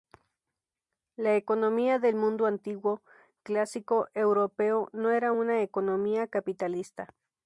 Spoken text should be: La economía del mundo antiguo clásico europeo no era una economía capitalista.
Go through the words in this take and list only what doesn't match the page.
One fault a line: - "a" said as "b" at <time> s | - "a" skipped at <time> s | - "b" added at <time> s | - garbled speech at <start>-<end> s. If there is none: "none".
none